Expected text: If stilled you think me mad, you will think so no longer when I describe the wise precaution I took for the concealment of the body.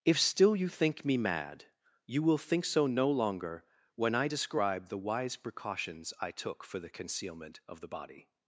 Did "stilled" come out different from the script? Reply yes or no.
yes